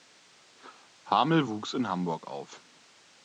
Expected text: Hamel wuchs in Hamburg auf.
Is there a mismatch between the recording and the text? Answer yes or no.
no